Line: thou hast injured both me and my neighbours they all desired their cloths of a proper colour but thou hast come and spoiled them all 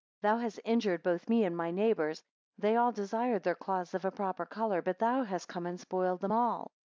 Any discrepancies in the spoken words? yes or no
no